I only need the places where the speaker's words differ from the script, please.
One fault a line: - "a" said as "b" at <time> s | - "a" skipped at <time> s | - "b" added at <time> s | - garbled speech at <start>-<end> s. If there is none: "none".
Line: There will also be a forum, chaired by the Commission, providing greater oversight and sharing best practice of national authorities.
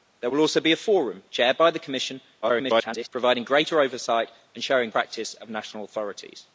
- garbled speech at 2.4-3.1 s
- "best" skipped at 4.9 s